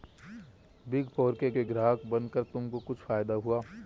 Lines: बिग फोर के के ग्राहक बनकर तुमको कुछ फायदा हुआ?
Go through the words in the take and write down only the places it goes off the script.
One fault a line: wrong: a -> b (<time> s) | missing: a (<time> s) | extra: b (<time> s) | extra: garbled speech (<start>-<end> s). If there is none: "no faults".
no faults